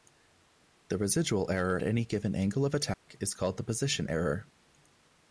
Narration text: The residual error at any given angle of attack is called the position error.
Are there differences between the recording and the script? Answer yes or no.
yes